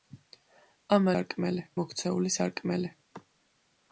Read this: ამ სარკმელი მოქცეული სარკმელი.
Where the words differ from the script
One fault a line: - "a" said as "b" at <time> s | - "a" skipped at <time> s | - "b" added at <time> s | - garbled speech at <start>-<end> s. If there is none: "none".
none